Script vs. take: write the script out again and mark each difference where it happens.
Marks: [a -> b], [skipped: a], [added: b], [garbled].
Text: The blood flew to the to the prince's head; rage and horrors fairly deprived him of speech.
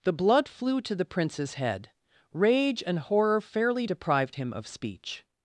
The blood flew to the [skipped: to the] prince's head; rage and [horrors -> horror] fairly deprived him of speech.